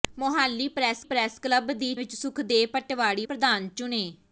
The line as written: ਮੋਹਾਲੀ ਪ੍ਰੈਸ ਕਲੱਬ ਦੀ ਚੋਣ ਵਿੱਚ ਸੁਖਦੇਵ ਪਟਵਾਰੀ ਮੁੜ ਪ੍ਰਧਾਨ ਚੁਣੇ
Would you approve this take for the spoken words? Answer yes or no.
no